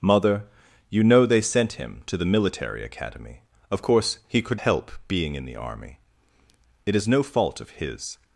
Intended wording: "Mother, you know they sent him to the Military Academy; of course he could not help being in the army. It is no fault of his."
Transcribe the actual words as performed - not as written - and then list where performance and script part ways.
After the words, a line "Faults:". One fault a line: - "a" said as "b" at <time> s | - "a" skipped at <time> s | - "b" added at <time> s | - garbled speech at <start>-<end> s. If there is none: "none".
"Mother, you know they sent him to the Military Academy; of course he could help being in the army. It is no fault of his."
Faults:
- "not" skipped at 4.6 s